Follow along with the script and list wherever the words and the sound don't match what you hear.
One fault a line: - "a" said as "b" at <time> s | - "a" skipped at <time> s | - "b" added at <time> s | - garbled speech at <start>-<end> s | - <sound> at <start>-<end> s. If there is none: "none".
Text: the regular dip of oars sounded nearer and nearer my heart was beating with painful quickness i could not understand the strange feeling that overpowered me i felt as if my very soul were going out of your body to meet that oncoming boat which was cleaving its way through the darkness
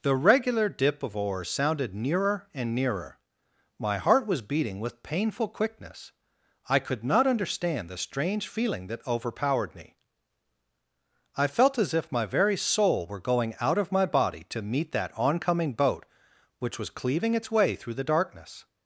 - "your" said as "my" at 13.9 s